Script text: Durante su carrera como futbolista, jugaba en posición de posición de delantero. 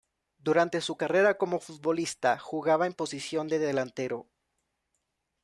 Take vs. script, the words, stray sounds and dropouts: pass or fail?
fail